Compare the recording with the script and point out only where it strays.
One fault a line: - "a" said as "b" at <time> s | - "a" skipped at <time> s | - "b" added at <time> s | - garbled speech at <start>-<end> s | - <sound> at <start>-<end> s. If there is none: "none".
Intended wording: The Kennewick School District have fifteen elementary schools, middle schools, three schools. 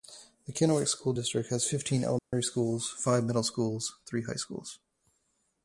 - "have" said as "has" at 1.5 s
- dropout at 2.2-2.3 s
- "five" added at 2.9 s
- "high" added at 4.2 s